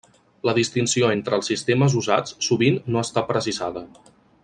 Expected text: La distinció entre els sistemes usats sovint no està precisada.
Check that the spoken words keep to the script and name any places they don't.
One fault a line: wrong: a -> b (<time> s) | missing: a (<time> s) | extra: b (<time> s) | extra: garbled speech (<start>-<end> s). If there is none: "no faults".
no faults